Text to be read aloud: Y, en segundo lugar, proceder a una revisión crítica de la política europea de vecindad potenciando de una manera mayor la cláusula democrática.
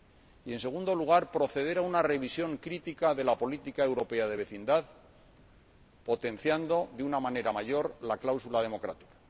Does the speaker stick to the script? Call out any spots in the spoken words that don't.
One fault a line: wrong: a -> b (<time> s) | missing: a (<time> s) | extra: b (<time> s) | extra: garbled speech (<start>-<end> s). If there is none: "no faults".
no faults